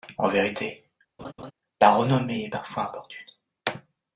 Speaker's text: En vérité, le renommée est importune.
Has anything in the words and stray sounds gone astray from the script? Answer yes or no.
yes